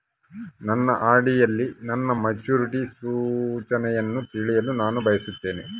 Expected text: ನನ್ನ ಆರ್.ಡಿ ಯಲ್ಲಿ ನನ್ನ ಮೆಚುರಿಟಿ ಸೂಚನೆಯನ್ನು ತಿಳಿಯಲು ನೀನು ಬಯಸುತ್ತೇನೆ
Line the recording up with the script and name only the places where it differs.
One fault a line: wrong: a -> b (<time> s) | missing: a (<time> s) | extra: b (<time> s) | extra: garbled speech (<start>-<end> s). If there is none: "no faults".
wrong: ನೀನು -> ನಾನು (4.8 s)